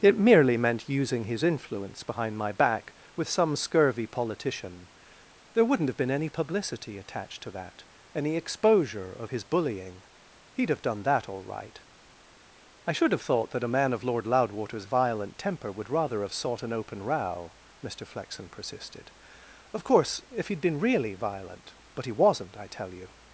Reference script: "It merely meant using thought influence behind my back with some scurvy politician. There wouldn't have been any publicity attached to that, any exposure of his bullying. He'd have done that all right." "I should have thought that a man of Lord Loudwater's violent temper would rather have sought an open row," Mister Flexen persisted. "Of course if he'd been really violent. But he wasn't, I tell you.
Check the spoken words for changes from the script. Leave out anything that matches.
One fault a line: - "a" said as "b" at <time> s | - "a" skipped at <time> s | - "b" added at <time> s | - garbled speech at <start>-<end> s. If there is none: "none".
- "thought" said as "his" at 1.2 s